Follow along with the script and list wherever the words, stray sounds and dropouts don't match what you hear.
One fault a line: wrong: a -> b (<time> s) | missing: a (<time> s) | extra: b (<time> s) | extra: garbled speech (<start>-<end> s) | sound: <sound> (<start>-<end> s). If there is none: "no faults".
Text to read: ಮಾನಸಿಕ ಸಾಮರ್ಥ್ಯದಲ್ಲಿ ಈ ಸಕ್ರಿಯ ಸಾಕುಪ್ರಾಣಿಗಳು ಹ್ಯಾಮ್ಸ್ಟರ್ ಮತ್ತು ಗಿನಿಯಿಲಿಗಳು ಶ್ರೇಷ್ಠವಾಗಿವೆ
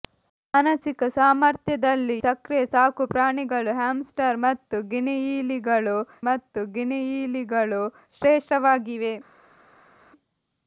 missing: ಈ (2.1 s)
extra: ಮತ್ತು ಗಿನಿಯಿಲಿಗಳು (6.3 s)